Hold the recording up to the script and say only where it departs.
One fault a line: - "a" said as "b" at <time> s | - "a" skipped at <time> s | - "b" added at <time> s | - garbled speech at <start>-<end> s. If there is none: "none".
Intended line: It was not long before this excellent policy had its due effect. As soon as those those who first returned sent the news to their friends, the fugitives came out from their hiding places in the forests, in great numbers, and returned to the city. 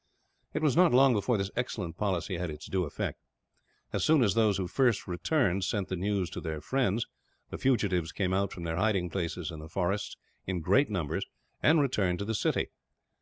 - "those" skipped at 4.6 s